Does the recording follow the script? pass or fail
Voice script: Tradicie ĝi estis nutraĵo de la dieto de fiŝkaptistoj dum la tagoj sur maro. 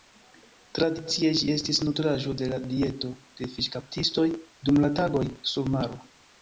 pass